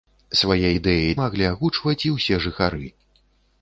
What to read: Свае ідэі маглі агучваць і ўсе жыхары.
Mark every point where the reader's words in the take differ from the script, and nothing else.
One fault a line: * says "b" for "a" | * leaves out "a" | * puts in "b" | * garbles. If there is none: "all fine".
all fine